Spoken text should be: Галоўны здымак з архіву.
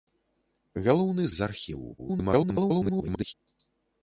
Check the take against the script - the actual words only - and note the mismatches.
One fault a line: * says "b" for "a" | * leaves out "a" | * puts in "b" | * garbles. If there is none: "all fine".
* leaves out "здымак"
* garbles